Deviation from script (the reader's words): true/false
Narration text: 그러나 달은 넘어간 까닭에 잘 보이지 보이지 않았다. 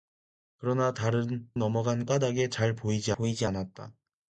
false